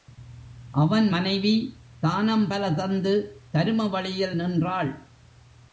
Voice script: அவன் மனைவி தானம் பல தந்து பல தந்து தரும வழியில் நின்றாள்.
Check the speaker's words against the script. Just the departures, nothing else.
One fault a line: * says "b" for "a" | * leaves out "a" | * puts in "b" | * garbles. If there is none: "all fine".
* leaves out "பல தந்து"